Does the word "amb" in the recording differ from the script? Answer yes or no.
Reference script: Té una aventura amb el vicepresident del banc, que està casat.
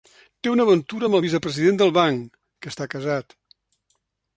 no